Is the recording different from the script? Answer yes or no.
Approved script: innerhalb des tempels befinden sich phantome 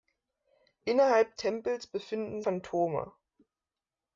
yes